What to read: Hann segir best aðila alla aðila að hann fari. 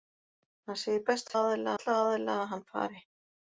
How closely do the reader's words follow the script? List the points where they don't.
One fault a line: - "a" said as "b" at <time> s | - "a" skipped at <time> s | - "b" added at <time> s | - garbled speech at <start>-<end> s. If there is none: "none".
none